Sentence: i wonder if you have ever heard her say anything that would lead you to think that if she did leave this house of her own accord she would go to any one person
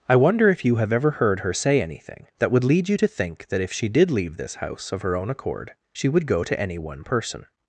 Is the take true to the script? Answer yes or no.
yes